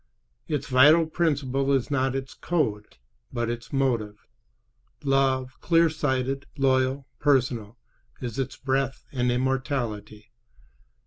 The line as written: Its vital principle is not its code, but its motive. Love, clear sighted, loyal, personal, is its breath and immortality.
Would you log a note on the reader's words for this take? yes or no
no